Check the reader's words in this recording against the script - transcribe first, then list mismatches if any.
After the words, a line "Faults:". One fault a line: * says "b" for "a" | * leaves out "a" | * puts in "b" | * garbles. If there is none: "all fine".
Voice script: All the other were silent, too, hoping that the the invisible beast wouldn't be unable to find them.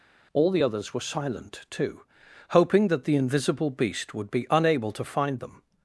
All the others were silent, too, hoping that the invisible beast would be unable to find them.
Faults:
* says "others" for "other"
* leaves out "the"
* says "would" for "wouldn't"